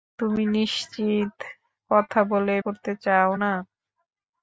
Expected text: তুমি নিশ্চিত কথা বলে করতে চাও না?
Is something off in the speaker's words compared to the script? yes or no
no